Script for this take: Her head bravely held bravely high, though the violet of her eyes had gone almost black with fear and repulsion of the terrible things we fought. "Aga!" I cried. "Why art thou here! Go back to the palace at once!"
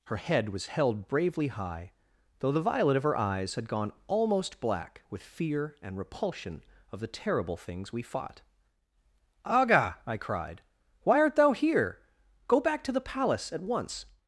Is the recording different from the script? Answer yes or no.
yes